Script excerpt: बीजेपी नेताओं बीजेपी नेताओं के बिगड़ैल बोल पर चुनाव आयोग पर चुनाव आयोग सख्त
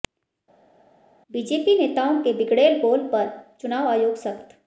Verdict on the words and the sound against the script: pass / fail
fail